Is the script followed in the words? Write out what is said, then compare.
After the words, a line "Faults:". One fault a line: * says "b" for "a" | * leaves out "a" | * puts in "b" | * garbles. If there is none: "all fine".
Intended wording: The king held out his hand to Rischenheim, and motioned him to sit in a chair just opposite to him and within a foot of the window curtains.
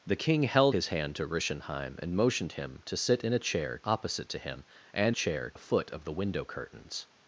The king held his hand to Rischenheim, and motioned him to sit in a chair opposite to him and chair a foot of the window curtains.
Faults:
* leaves out "out"
* leaves out "just"
* says "chair" for "within"